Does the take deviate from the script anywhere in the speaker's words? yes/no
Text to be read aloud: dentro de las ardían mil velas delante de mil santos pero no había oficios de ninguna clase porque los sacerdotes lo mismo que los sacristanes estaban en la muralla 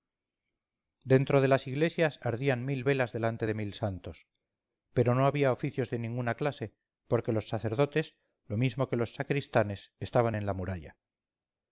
yes